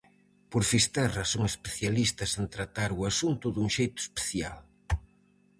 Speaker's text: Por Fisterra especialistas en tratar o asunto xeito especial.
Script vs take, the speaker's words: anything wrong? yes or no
yes